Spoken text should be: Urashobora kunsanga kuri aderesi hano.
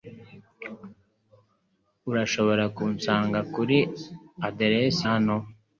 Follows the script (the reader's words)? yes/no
yes